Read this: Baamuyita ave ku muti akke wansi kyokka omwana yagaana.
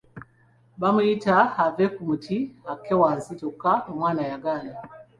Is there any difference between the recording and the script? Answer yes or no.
no